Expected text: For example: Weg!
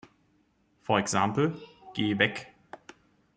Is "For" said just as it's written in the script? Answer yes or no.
yes